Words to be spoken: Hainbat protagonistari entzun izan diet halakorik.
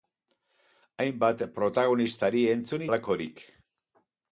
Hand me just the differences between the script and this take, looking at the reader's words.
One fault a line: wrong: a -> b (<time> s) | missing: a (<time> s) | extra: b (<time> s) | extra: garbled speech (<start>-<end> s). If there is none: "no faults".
missing: izan diet (2.9 s)